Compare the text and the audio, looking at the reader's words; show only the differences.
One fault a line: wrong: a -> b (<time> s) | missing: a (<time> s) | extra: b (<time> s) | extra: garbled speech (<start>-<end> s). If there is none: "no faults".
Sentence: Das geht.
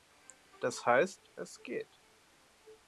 extra: heißt es (0.8 s)